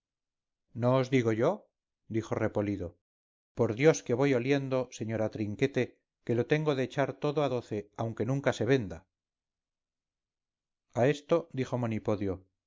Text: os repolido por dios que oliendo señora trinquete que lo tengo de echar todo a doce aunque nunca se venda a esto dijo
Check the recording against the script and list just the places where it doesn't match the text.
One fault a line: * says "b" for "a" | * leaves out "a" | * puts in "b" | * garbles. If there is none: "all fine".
* puts in "digo yo dijo"
* puts in "voy"